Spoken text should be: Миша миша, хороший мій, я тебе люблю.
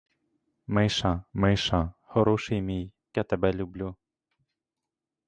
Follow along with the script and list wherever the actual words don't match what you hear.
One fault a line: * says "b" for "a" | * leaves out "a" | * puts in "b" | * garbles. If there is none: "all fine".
all fine